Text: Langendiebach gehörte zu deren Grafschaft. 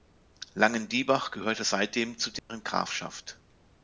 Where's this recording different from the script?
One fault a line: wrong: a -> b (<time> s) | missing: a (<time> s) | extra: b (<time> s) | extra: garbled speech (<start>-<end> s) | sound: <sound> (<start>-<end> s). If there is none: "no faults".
extra: seitdem (1.6 s)
sound: dropout (2.4-2.5 s)